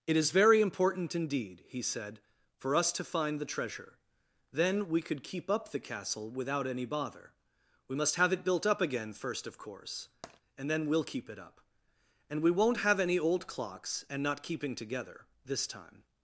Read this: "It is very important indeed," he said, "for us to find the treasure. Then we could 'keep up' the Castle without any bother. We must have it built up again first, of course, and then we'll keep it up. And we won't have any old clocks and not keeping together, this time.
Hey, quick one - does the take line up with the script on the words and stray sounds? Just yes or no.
no